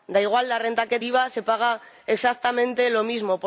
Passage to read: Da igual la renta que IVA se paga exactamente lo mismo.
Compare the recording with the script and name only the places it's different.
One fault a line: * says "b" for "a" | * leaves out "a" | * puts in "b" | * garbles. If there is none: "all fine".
all fine